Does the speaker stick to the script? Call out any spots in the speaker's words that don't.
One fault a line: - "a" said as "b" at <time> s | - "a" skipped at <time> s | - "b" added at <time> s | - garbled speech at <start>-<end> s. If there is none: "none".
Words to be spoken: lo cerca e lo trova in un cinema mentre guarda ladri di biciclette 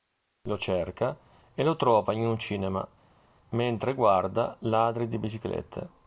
none